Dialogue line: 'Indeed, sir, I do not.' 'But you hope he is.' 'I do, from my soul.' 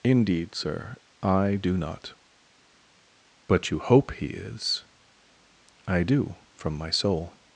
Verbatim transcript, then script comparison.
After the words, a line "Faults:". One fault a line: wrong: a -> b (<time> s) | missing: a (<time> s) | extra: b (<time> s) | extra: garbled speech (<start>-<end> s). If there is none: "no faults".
'Indeed, sir, I do not.' 'But you hope he is.' 'I do, from my soul.'
Faults:
no faults